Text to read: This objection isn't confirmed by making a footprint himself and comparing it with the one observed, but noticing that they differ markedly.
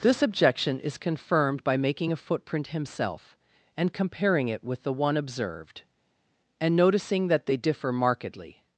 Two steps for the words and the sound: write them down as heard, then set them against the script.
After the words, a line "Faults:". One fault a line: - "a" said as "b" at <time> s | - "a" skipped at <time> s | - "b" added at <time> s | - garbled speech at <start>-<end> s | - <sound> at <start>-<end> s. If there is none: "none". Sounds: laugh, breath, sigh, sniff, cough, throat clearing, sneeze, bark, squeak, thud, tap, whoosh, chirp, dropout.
This objection is confirmed by making a footprint himself and comparing it with the one observed, and noticing that they differ markedly.
Faults:
- "isn't" said as "is" at 0.8 s
- "but" said as "and" at 6.6 s